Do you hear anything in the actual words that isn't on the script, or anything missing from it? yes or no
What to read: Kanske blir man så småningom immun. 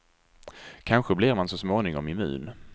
no